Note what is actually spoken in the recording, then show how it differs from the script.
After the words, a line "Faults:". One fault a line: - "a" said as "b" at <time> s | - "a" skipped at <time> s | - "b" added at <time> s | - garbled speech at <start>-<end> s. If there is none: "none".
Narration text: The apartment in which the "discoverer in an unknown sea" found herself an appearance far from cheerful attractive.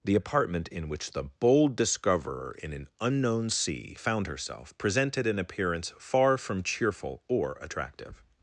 The apartment in which the "bold discoverer in an unknown sea" found herself presented an appearance far from cheerful or attractive.
Faults:
- "bold" added at 1.2 s
- "presented" added at 4.8 s
- "or" added at 7.3 s